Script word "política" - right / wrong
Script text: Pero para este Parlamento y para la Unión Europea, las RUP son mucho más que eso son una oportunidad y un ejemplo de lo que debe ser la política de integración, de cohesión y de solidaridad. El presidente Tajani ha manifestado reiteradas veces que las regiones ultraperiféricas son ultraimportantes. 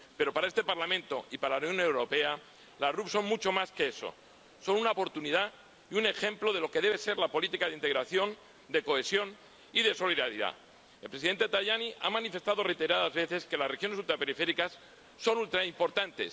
right